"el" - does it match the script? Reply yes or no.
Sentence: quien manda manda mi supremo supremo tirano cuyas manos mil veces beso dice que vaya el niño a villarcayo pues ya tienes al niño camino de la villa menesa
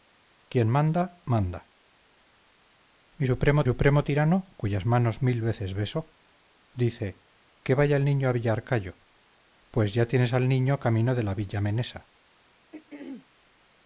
yes